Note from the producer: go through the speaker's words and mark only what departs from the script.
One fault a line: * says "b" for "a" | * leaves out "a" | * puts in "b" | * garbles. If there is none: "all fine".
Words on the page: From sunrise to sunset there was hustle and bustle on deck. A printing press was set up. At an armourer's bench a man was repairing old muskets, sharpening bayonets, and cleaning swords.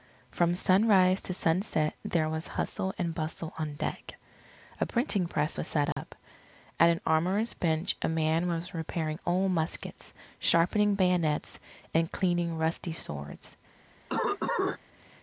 * puts in "rusty"